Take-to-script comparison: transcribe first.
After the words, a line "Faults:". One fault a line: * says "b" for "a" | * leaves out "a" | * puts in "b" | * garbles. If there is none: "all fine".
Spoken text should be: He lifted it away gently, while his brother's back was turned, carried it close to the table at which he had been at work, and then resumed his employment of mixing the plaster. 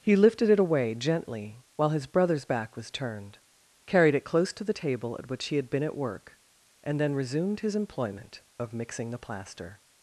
He lifted it away gently, while his brother's back was turned, carried it close to the table at which he had been at work, and then resumed his employment of mixing the plaster.
Faults:
all fine